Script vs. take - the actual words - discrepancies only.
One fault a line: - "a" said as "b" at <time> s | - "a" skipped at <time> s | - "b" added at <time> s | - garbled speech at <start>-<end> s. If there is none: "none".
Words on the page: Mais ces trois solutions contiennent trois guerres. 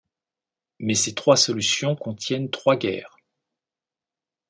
none